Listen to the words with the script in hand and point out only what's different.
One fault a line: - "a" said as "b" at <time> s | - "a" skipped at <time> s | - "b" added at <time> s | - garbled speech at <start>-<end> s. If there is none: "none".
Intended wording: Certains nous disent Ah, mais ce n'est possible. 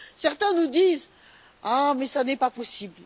- "pas" added at 2.4 s